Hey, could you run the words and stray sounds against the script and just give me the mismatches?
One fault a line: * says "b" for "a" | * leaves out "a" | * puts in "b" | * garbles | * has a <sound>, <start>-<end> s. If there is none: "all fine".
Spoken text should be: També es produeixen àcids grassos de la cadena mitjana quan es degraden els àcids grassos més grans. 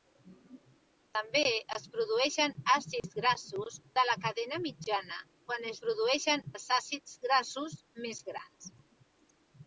* has a dropout, 3.0-3.0 s
* says "produeixen" for "degraden"